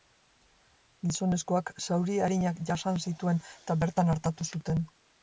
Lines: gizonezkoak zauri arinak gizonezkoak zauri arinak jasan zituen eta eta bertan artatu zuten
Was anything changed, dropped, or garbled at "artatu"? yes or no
no